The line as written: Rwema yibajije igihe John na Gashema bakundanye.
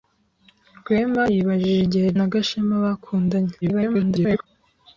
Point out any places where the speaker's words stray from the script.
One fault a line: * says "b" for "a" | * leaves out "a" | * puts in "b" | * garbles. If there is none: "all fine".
* leaves out "John"
* garbles